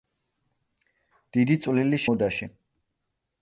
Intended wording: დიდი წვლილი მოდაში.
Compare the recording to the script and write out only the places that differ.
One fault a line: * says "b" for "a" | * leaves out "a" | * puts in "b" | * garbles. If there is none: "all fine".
all fine